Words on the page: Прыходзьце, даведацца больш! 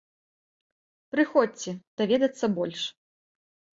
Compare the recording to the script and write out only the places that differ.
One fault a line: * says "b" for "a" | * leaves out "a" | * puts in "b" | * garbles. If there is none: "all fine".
all fine